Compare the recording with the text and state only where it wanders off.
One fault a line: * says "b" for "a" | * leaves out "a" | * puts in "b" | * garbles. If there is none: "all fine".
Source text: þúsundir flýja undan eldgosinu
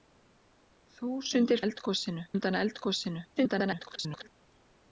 * says "eldgosinu" for "flýja"
* garbles